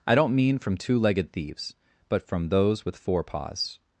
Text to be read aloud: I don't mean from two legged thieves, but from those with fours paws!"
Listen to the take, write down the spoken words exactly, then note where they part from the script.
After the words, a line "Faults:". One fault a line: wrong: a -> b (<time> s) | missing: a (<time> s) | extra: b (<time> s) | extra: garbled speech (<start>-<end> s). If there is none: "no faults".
I don't mean from two legged thieves, but from those with four paws!"
Faults:
wrong: fours -> four (3.0 s)